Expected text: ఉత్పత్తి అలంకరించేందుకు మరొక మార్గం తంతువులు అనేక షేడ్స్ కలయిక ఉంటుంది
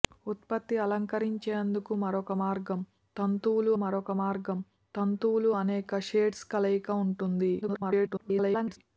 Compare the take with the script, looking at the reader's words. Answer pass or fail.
fail